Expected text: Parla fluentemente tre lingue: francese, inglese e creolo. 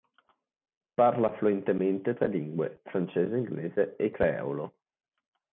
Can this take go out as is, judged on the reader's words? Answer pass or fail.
pass